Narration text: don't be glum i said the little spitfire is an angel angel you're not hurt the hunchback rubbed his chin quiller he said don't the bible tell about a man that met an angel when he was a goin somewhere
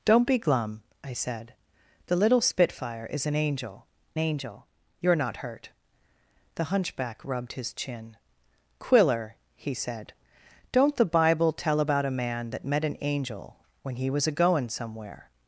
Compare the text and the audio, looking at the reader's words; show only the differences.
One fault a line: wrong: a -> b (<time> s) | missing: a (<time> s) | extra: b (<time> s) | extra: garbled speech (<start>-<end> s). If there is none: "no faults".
no faults